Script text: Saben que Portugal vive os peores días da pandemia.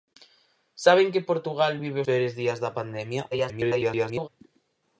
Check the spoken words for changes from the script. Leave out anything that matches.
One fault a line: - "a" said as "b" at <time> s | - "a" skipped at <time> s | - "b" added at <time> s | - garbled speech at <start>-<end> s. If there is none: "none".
- "os" skipped at 2.0 s
- garbled speech at 3.3-4.3 s